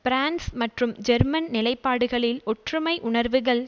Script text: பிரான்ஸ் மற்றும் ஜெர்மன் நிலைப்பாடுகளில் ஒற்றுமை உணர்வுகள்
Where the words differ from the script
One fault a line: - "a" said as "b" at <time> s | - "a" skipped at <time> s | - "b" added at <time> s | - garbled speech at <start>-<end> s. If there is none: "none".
none